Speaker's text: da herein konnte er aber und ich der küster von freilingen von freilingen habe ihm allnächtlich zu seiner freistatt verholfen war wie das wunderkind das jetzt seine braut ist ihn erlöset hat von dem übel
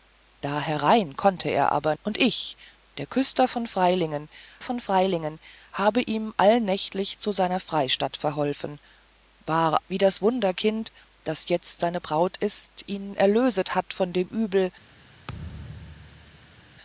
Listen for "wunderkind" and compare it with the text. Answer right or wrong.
right